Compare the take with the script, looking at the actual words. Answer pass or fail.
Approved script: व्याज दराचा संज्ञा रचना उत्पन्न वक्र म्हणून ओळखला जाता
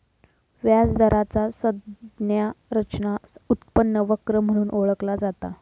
pass